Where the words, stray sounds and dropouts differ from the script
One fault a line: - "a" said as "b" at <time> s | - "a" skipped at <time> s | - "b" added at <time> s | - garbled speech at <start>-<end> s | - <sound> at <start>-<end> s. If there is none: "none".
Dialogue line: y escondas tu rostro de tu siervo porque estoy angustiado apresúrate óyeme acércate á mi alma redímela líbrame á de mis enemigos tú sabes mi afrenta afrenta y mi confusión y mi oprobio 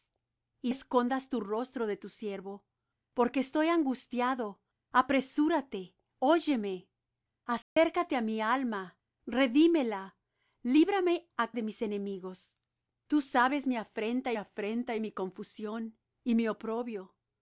- dropout at 7.6-7.8 s